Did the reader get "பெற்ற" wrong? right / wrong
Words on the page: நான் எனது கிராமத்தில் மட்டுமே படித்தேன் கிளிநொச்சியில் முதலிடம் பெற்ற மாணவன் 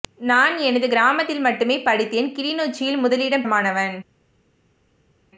wrong